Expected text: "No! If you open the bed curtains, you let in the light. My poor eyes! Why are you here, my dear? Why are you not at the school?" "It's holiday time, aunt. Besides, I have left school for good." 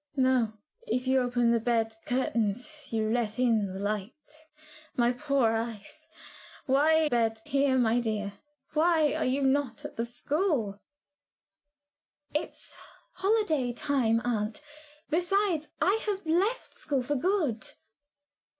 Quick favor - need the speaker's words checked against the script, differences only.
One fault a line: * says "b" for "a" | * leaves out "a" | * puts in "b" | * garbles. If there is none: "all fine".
* says "bed" for "you"